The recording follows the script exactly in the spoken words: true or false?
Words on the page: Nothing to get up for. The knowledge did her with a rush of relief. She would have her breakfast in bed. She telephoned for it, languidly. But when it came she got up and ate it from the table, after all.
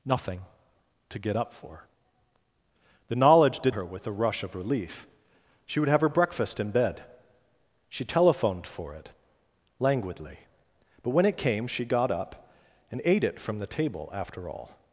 true